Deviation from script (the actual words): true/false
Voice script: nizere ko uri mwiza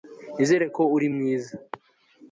false